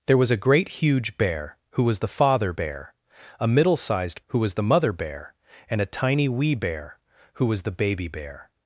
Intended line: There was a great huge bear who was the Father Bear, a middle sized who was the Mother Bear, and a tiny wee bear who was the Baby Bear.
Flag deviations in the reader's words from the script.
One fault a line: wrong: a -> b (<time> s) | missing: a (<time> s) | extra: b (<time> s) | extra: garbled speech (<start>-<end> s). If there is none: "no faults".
no faults